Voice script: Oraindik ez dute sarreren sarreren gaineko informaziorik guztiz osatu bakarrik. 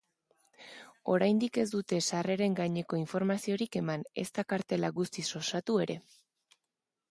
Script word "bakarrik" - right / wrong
wrong